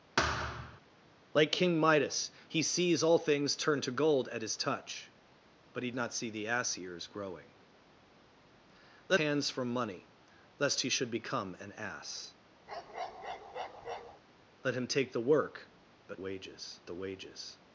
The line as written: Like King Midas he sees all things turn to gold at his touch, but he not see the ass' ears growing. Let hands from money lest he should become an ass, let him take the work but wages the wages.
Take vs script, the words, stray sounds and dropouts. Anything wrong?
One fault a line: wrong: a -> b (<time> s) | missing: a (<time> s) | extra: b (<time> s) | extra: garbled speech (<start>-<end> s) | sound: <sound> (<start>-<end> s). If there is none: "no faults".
sound: thud (0.2-0.8 s)
sound: bark (12.7-14.2 s)